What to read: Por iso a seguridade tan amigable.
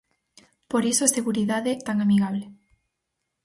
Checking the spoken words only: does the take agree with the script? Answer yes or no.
yes